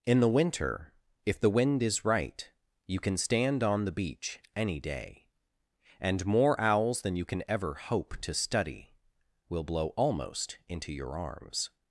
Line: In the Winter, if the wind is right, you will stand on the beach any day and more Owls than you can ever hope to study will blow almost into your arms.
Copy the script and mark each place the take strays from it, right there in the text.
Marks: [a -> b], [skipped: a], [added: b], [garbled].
In the Winter, if the wind is right, you [will -> can] stand on the beach any day and more Owls than you can ever hope to study will blow almost into your arms.